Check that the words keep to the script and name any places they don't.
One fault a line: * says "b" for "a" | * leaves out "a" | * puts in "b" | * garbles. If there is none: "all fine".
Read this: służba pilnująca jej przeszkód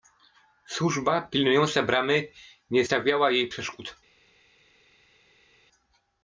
* puts in "bramy nie stawiała"